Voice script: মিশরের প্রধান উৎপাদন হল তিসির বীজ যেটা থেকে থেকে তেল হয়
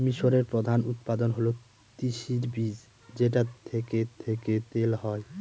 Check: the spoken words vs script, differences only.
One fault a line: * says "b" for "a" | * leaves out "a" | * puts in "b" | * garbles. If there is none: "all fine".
all fine